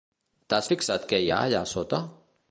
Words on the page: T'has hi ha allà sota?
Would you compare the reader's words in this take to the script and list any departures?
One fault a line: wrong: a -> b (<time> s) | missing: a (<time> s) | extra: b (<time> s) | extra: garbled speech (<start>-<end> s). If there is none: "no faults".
extra: fixat què (0.7 s)